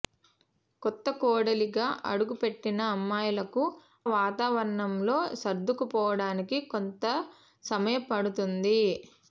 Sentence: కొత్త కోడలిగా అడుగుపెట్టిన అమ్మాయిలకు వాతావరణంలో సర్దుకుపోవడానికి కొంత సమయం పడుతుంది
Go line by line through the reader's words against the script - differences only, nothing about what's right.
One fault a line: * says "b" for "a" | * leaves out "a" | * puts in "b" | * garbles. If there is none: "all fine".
all fine